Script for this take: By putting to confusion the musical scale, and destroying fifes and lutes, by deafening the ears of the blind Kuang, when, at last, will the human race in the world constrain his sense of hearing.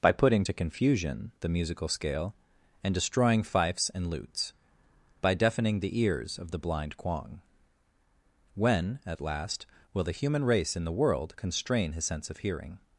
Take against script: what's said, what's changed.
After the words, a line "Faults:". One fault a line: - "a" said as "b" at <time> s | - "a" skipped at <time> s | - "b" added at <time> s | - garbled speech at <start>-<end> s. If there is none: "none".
By putting to confusion the musical scale, and destroying fifes and lutes, by deafening the ears of the blind Kuang, when, at last, will the human race in the world constrain his sense of hearing.
Faults:
none